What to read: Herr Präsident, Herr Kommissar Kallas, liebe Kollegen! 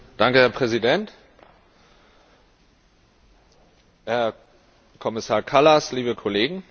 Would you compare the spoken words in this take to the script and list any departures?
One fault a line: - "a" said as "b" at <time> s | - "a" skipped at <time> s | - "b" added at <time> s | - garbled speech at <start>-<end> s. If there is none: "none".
none